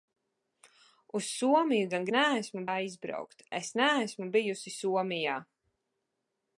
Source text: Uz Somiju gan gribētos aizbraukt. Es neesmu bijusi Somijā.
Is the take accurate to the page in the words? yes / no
no